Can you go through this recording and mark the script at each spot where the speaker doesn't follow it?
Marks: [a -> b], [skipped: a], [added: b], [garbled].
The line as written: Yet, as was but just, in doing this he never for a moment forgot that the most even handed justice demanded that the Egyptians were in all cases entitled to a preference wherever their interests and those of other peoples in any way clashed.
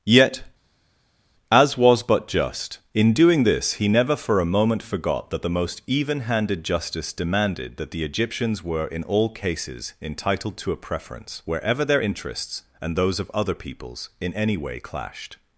Yet, as was but just, in doing this he never for a moment forgot that the most even handed justice demanded that the Egyptians were in all cases entitled to a preference wherever their interests and those of other peoples in any way clashed.